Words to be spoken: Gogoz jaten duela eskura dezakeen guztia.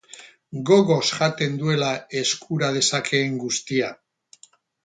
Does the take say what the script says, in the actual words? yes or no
yes